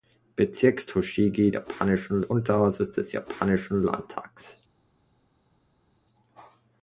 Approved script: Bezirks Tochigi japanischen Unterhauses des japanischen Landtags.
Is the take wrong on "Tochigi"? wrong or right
right